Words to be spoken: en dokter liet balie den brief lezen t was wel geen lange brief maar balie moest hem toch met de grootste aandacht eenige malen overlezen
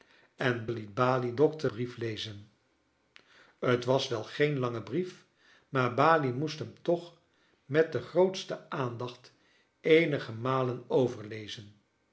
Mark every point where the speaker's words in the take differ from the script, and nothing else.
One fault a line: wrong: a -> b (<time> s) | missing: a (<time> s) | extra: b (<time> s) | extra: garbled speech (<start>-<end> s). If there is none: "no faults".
missing: dokter (0.7 s)
wrong: den -> dokter (1.4 s)